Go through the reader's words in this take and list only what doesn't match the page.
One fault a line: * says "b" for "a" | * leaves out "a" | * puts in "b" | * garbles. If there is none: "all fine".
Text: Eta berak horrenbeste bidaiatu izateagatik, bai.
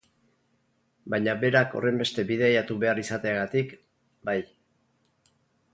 * says "Baina" for "Eta"
* puts in "behar"